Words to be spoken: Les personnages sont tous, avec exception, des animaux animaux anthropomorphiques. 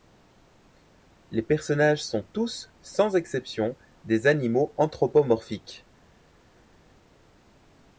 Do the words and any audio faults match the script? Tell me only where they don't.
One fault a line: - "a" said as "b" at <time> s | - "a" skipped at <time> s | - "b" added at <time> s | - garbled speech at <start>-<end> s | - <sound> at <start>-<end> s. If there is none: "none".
- "avec" said as "sans" at 2.8 s
- "animaux" skipped at 4.7 s